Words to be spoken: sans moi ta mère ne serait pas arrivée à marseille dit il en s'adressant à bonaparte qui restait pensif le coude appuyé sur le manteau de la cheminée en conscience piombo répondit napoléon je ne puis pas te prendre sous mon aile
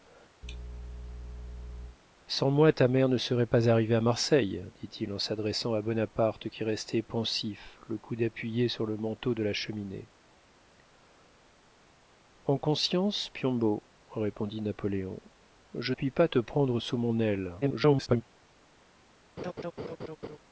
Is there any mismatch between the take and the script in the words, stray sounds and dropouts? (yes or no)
yes